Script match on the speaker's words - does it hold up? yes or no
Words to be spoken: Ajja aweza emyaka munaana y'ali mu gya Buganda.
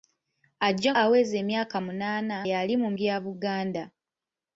yes